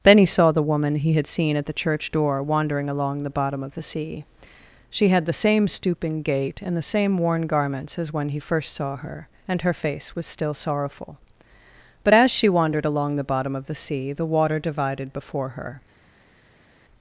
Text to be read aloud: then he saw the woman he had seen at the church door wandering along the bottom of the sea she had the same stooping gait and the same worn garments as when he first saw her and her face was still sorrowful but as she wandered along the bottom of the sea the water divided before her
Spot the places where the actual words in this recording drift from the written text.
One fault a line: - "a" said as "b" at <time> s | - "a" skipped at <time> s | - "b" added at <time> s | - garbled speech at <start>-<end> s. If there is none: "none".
none